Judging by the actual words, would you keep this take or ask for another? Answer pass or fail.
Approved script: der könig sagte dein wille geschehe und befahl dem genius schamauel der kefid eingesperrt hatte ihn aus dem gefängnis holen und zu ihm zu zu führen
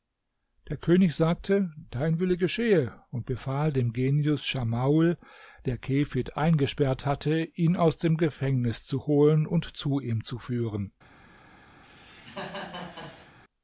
fail